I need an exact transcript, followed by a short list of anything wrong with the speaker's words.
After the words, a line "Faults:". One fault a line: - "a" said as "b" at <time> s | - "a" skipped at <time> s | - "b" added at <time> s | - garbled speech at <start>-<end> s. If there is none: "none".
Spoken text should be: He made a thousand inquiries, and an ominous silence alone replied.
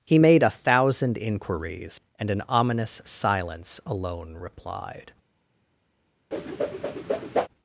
He made a thousand inquiries, and an ominous silence alone replied.
Faults:
none